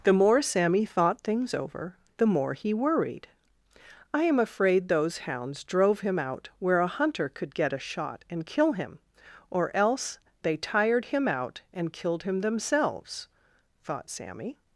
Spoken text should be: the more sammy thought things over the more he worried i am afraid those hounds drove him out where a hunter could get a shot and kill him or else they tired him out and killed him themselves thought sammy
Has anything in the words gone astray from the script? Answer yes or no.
no